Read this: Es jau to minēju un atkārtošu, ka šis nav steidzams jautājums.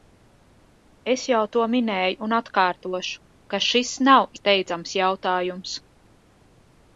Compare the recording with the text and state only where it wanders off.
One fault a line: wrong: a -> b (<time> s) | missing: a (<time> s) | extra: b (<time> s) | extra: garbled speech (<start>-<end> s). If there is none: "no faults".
no faults